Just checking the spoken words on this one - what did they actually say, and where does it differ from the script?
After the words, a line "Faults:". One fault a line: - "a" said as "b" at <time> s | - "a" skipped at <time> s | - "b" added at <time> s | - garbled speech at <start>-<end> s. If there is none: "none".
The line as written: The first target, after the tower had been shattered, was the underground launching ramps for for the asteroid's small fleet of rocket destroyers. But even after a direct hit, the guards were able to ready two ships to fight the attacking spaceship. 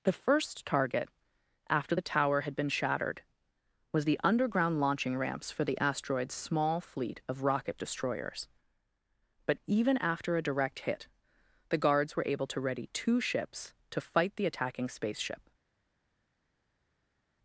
The first target, after the tower had been shattered, was the underground launching ramps for the asteroid's small fleet of rocket destroyers. But even after a direct hit, the guards were able to ready two ships to fight the attacking spaceship.
Faults:
- "for" skipped at 5.6 s